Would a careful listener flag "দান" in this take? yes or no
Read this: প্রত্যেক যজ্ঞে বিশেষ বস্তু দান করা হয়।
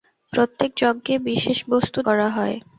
yes